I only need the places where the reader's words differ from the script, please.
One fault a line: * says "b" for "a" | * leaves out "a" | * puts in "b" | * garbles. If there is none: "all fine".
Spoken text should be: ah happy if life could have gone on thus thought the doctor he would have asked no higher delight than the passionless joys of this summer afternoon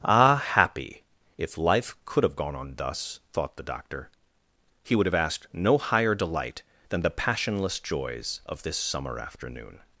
all fine